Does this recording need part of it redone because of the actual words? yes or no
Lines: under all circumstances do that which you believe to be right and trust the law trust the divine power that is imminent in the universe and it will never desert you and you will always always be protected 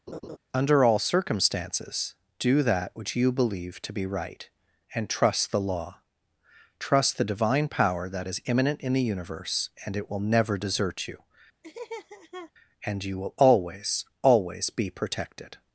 no